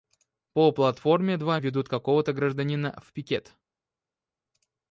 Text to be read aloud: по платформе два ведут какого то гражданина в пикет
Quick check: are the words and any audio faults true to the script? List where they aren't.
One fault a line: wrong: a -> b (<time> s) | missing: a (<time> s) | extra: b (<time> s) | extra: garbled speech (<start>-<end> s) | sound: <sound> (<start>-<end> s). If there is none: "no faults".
no faults